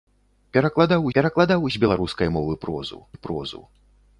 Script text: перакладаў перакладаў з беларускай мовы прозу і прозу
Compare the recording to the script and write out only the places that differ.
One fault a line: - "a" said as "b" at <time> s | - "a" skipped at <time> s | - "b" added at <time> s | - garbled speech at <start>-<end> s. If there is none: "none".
none